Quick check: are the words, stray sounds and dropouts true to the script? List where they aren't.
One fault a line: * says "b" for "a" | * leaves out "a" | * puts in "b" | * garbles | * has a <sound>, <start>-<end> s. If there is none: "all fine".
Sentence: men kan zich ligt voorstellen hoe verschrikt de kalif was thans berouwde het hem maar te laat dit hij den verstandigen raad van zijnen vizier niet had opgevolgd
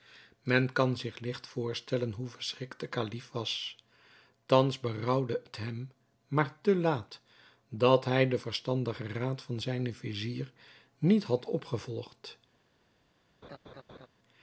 * says "dat" for "dit"
* has a laugh, 13.4-14.1 s